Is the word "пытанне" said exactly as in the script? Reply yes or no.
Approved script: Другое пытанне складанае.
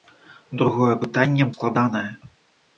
yes